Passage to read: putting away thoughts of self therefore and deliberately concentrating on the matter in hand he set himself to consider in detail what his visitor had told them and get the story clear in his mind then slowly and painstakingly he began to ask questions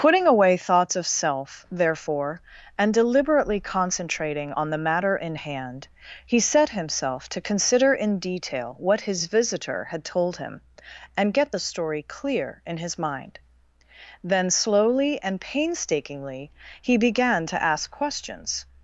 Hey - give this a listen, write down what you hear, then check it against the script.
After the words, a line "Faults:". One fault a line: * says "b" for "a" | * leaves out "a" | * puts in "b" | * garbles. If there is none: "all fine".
putting away thoughts of self therefore and deliberately concentrating on the matter in hand he set himself to consider in detail what his visitor had told him and get the story clear in his mind then slowly and painstakingly he began to ask questions
Faults:
* says "him" for "them"